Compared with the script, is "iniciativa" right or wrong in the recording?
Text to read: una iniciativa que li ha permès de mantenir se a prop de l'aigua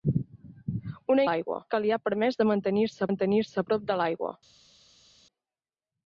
wrong